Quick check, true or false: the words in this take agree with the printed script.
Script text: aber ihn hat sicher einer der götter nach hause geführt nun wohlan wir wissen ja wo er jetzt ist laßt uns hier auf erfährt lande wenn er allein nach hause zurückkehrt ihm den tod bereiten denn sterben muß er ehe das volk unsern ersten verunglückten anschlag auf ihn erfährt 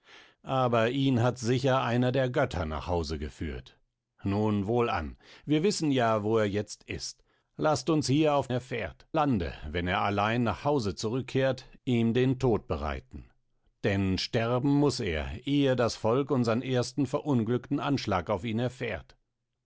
true